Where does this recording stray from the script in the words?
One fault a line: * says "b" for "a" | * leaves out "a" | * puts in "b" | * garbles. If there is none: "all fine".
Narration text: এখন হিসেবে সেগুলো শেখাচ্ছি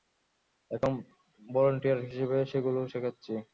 * puts in "ভলান্টিয়ার"